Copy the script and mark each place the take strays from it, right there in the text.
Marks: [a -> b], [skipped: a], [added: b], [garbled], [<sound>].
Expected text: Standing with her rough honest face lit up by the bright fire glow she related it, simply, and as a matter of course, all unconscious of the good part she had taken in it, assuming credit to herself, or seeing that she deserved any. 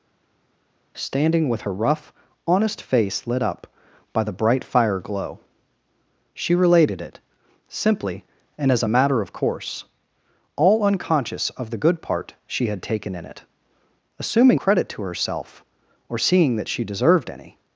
Standing with her rough honest face lit up by the bright fire glow she related it, simply, and as a matter of course, all unconscious of the good part she had taken in it, assuming credit to herself, or seeing that she deserved any.